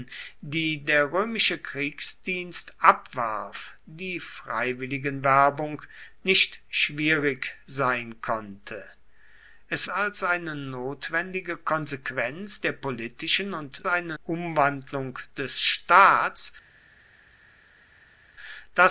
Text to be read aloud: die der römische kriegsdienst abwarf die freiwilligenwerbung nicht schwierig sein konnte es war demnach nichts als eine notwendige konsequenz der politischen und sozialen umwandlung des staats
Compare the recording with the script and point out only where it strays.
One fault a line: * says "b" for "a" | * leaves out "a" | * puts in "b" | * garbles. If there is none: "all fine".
* leaves out "war demnach nichts"
* says "eine" for "sozialen"